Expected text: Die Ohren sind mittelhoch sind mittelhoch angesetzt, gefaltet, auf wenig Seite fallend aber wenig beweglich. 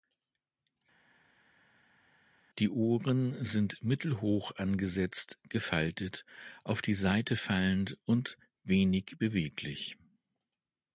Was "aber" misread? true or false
true